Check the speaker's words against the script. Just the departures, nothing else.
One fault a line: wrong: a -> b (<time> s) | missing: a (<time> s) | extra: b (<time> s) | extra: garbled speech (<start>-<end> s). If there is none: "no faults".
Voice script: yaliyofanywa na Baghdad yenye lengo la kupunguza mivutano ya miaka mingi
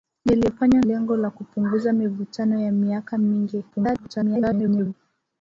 missing: na Baghdad yenye (0.8 s)
extra: garbled speech (3.7-4.9 s)